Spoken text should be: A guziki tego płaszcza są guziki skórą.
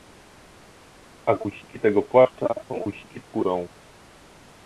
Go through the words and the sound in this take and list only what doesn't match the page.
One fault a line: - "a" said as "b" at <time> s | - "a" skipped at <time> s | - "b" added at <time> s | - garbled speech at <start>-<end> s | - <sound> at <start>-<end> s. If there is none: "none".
none